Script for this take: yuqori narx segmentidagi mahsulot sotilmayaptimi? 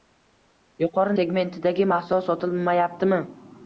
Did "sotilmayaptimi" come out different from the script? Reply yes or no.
no